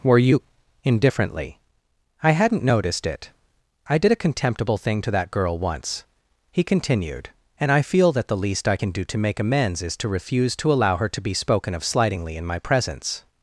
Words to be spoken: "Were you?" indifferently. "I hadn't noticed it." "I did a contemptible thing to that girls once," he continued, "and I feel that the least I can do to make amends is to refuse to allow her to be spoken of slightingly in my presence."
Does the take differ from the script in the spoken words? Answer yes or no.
yes